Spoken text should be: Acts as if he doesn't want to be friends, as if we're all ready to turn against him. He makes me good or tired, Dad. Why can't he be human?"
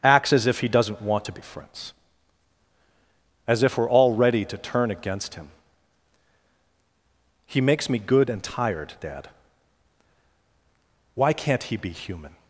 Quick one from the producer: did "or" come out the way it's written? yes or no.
no